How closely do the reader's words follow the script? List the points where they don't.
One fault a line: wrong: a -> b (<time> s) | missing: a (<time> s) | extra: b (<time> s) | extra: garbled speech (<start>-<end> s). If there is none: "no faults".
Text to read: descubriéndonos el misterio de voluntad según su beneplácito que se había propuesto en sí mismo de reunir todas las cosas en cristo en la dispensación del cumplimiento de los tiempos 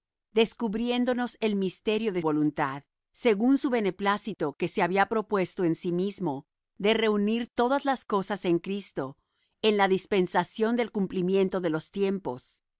no faults